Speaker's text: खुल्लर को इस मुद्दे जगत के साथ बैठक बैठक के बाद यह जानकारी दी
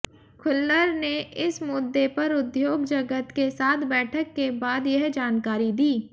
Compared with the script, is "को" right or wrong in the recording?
wrong